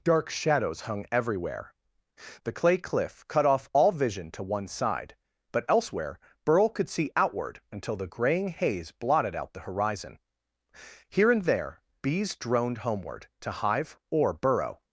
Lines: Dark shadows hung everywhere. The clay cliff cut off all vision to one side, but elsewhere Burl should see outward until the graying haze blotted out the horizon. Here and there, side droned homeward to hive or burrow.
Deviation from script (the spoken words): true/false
true